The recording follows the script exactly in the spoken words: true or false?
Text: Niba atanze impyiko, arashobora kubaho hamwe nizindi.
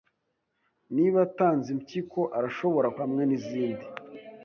false